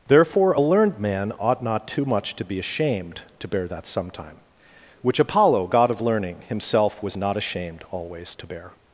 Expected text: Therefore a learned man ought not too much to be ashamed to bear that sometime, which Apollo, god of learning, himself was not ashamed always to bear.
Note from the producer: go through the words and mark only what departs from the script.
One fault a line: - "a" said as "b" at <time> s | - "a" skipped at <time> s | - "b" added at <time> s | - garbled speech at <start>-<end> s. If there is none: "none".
none